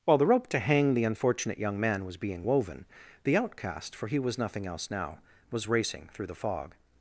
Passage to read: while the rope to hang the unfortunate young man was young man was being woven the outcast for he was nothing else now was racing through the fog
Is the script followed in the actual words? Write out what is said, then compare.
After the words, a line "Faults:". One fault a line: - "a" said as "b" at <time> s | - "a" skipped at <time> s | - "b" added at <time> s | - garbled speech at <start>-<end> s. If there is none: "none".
while the rope to hang the unfortunate young man was being woven the outcast for he was nothing else now was racing through the fog
Faults:
- "young man was" skipped at 2.2 s